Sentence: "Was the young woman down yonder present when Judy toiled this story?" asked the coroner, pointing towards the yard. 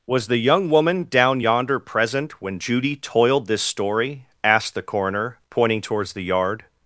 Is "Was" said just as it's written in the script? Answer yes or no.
yes